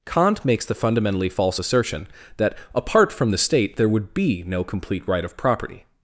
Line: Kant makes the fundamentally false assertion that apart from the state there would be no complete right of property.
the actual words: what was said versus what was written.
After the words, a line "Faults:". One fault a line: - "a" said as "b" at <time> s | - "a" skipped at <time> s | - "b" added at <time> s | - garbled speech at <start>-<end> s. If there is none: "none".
Kant makes the fundamentally false assertion that apart from the state there would be no complete right of property.
Faults:
none